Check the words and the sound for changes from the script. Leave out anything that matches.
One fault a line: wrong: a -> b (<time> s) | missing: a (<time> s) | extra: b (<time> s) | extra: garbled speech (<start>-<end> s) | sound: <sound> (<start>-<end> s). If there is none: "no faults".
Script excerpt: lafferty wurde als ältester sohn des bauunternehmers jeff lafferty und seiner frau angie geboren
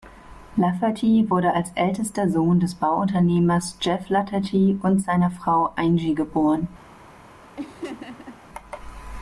sound: laugh (7.6-8.4 s)